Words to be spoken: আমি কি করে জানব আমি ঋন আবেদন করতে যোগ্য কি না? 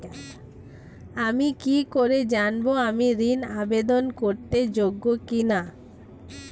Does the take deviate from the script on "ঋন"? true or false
false